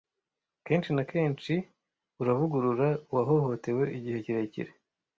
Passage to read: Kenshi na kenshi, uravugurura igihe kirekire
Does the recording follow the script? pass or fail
fail